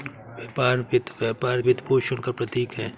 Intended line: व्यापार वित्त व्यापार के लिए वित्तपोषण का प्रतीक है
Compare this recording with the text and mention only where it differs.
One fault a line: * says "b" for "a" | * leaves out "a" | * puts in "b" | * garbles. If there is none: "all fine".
* leaves out "के लिए"